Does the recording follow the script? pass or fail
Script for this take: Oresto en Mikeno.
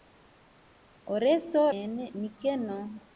pass